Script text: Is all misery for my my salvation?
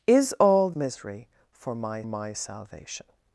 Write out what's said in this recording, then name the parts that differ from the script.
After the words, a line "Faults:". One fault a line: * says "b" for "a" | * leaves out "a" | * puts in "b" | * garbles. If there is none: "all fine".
Is all misery for my my salvation?
Faults:
all fine